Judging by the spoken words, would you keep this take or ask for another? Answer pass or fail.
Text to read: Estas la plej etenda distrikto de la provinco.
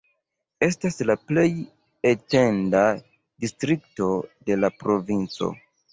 pass